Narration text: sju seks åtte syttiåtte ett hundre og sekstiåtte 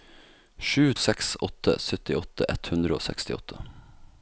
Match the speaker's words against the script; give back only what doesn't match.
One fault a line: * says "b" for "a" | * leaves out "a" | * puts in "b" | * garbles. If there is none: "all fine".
all fine